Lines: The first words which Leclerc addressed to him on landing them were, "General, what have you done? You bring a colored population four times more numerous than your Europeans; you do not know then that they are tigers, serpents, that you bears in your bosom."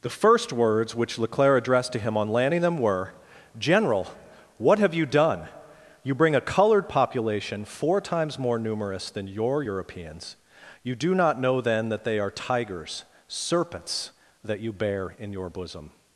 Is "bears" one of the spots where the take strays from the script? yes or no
yes